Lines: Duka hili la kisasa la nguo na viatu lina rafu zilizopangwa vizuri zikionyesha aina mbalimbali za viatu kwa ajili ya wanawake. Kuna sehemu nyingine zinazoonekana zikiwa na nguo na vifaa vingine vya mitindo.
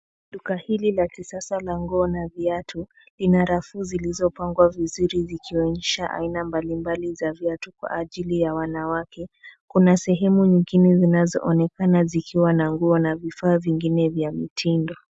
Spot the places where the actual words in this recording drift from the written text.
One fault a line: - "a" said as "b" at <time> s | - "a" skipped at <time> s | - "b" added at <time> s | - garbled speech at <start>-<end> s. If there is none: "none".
none